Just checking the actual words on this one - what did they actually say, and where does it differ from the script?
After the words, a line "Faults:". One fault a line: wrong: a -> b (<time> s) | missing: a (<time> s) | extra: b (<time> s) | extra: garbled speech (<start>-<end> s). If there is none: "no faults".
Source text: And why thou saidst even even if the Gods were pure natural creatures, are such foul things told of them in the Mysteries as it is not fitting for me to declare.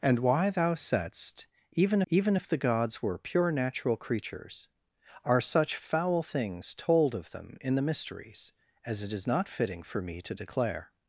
And why thou saidst even even if the Gods were pure natural creatures, are such foul things told of them in the Mysteries as it is not fitting for me to declare.
Faults:
no faults